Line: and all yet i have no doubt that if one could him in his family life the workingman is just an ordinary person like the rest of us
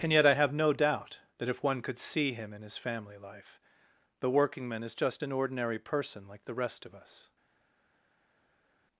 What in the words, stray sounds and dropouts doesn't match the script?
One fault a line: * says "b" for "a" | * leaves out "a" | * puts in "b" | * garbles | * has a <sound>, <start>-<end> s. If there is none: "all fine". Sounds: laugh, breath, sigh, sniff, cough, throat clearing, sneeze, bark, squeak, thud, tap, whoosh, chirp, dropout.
* leaves out "all"
* puts in "see"